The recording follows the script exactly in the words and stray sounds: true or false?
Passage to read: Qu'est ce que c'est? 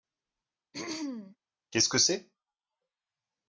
false